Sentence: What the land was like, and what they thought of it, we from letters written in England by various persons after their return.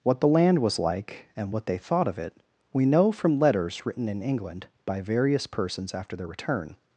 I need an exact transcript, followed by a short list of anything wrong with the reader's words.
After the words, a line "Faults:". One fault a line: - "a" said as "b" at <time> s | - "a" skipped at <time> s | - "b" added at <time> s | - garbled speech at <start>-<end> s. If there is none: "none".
What the land was like, and what they thought of it, we know from letters written in England by various persons after their return.
Faults:
- "know" added at 2.9 s